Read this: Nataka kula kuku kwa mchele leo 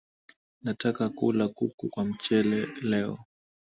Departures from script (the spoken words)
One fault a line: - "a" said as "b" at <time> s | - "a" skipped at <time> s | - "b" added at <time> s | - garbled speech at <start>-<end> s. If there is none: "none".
none